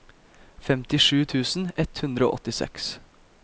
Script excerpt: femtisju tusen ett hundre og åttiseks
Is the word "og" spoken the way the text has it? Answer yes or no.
yes